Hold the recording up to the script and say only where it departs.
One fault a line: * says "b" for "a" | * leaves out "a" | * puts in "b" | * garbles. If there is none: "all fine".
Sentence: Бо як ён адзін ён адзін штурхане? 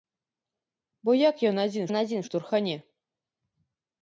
all fine